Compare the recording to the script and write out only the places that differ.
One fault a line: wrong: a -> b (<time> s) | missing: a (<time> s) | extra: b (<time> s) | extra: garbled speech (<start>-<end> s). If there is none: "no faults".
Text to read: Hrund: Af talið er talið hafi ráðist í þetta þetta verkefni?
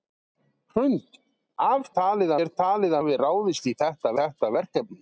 no faults